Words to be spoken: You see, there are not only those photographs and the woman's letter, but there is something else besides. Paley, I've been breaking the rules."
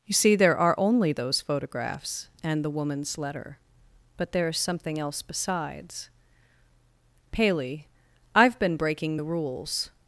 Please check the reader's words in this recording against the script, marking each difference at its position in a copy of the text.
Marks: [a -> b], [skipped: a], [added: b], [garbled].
You see, there are [skipped: not] only those photographs and the woman's letter, but there is something else besides. Paley, I've been breaking the rules."